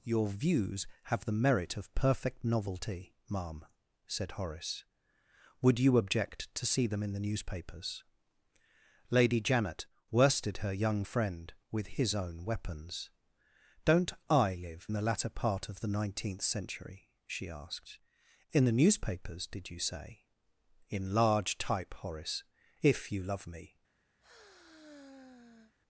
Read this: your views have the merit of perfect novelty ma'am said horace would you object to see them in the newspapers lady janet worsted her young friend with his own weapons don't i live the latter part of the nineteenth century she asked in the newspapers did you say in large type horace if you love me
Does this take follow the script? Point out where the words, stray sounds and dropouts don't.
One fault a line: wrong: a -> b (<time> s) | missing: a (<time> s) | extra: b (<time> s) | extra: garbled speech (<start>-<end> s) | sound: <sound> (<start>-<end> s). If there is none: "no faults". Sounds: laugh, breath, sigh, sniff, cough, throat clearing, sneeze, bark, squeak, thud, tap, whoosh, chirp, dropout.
sound: sigh (24.2-25.7 s)